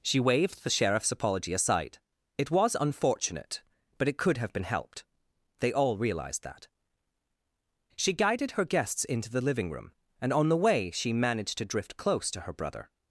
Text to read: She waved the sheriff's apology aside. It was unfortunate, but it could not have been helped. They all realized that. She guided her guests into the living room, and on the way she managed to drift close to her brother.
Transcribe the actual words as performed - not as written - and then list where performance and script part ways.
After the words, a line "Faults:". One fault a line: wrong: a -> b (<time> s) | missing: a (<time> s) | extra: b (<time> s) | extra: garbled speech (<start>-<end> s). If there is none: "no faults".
She waved the sheriff's apology aside. It was unfortunate, but it could have been helped. They all realized that. She guided her guests into the living room, and on the way she managed to drift close to her brother.
Faults:
missing: not (4.4 s)